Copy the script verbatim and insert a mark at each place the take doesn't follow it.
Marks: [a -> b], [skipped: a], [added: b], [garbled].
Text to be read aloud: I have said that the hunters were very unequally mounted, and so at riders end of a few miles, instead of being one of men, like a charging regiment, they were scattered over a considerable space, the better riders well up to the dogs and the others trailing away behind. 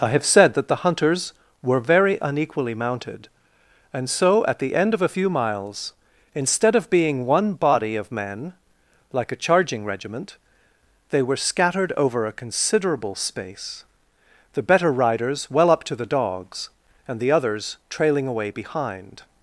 I have said that the hunters were very unequally mounted, and so at [riders -> the] end of a few miles, instead of being one [added: body] of men, like a charging regiment, they were scattered over a considerable space, the better riders well up to the dogs and the others trailing away behind.